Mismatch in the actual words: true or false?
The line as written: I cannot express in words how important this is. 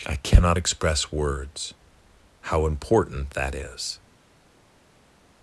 true